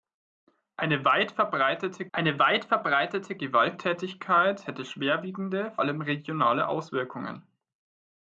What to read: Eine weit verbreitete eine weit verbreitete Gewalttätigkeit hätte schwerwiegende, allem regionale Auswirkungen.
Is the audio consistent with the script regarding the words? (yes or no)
yes